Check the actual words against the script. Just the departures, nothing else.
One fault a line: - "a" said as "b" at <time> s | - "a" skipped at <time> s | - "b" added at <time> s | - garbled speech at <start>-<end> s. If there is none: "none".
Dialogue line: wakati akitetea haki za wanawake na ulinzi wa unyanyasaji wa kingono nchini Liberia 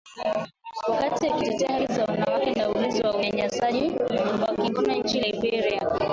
none